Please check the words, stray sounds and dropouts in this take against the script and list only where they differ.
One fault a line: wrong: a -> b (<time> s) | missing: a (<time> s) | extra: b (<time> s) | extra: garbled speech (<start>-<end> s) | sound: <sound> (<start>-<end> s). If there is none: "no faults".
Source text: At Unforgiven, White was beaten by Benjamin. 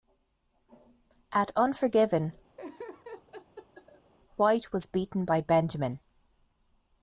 sound: laugh (2.6-4.1 s)